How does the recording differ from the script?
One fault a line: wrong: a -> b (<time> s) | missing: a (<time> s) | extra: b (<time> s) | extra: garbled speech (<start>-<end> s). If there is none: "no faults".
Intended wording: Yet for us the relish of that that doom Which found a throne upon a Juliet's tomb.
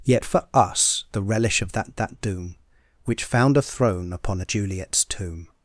no faults